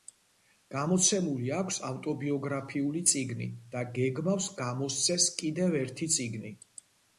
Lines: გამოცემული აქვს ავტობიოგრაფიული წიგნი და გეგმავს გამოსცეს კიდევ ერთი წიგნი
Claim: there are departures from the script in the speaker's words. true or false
false